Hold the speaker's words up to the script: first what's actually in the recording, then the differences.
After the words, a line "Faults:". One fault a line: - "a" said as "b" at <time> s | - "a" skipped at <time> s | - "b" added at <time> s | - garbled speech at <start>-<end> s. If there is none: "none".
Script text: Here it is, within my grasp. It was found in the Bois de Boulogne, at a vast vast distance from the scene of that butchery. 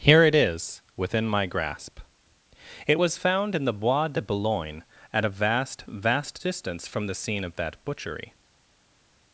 Here it is, within my grasp. It was found in the Bois de Boulogne, at a vast vast distance from the scene of that butchery.
Faults:
none